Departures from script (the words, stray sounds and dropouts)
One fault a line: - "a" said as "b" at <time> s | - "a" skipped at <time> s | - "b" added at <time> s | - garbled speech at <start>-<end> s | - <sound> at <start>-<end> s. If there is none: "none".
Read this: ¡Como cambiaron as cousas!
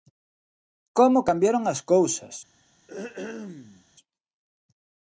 - throat clearing at 2.9-3.9 s